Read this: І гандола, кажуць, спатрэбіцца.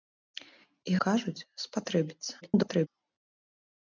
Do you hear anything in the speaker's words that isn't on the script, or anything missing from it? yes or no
yes